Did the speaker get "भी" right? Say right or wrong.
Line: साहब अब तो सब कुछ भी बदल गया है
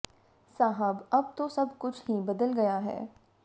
wrong